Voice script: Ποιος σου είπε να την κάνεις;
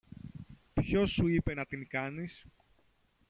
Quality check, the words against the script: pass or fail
pass